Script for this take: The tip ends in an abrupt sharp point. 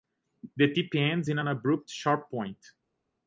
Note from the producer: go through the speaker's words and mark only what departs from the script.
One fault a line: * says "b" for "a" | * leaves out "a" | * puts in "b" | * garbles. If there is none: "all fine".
all fine